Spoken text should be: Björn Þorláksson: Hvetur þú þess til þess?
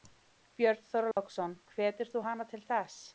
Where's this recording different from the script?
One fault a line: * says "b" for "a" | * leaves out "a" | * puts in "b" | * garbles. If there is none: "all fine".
* says "hana" for "þess"